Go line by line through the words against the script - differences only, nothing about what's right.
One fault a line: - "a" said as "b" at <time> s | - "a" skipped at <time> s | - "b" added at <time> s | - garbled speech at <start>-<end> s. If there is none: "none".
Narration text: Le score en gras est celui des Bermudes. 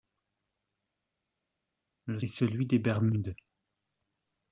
- "score en gras" skipped at 2.2 s